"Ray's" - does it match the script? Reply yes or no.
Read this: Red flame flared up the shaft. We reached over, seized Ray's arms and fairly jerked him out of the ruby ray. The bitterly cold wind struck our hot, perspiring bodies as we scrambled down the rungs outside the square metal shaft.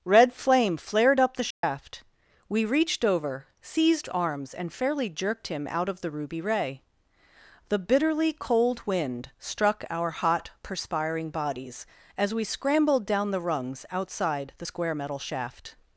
no